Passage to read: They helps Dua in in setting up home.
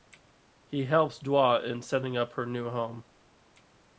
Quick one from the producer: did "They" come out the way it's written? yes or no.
no